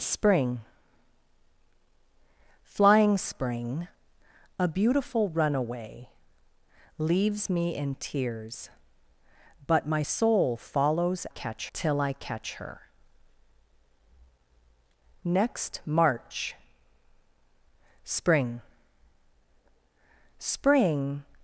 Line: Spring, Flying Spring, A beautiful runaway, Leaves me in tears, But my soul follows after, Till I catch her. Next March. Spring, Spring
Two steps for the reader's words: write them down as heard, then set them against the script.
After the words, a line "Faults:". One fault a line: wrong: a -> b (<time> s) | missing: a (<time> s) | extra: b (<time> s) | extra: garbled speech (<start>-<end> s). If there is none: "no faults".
Spring, Flying Spring, A beautiful runaway, Leaves me in tears, But my soul follows catch, Till I catch her. Next March. Spring, Spring
Faults:
wrong: after -> catch (11.3 s)